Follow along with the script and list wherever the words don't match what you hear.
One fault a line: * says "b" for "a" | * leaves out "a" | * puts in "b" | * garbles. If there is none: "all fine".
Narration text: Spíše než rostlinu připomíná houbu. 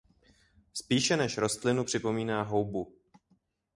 all fine